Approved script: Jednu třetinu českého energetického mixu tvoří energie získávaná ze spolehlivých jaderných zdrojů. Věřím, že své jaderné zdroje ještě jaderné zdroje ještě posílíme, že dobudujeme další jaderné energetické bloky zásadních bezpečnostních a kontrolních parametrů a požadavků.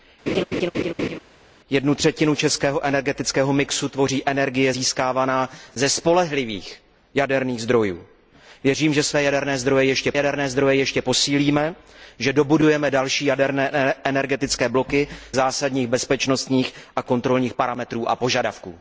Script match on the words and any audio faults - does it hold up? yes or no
no